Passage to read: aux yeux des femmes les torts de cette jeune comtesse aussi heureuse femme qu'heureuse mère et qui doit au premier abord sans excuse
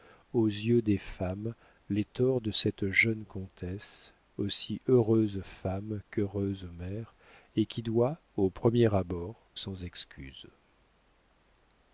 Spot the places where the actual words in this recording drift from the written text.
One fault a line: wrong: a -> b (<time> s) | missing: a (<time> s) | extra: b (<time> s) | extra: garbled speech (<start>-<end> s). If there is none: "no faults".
no faults